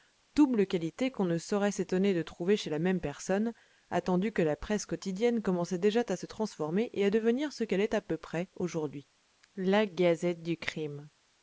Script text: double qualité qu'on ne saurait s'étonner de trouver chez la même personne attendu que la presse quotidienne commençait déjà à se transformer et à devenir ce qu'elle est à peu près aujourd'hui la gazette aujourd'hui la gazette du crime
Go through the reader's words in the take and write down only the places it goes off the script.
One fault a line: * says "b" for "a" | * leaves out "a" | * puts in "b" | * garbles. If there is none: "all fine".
* leaves out "aujourd'hui la gazette"